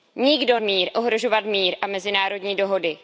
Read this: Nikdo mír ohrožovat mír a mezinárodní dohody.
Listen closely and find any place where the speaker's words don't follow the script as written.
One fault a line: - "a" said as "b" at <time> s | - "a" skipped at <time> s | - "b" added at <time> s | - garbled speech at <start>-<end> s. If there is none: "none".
none